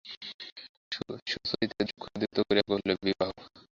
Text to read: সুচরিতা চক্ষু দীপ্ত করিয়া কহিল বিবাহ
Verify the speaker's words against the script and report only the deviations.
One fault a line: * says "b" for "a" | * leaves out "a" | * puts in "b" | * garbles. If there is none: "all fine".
all fine